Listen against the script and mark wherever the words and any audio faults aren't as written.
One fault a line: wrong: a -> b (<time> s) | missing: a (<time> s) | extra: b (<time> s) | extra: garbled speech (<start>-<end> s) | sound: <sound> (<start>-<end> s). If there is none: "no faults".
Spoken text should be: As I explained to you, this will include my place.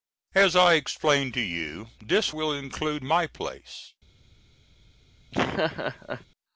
sound: laugh (5.3-6.3 s)